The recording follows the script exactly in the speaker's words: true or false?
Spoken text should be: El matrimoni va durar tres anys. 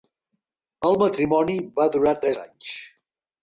true